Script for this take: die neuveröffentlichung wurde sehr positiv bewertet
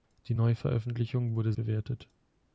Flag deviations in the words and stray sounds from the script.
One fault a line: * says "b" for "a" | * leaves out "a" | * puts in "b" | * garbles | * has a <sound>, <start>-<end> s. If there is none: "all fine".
* leaves out "sehr positiv"